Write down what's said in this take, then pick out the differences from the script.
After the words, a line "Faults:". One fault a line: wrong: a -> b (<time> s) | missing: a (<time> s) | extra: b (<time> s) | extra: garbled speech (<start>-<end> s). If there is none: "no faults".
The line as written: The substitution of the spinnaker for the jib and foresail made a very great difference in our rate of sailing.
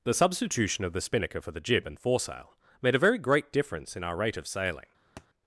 The substitution of the spinnaker for the jib and foresail made a very great difference in our rate of sailing.
Faults:
no faults